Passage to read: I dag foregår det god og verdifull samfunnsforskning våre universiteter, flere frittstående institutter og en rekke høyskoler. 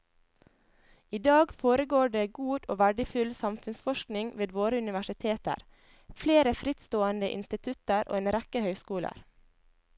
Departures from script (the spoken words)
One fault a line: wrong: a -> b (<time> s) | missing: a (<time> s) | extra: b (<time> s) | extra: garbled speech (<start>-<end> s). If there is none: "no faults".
extra: ved (4.4 s)